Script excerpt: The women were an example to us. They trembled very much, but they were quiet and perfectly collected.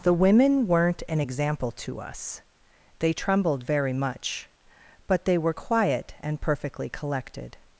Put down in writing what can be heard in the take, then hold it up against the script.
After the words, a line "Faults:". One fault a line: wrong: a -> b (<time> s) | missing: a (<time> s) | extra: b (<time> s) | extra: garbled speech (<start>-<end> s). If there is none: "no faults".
The women weren't an example to us. They trembled very much, but they were quiet and perfectly collected.
Faults:
wrong: were -> weren't (0.7 s)